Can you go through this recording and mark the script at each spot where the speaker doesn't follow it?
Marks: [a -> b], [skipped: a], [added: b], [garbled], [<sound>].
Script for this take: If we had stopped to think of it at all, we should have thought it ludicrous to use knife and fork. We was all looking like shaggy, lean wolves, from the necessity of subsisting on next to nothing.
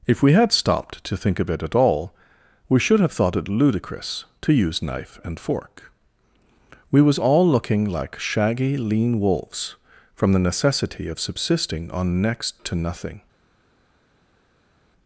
If we had stopped to think of it at all, we should have thought it ludicrous to use knife and fork. We was all looking like shaggy, lean wolves, from the necessity of subsisting on next to nothing.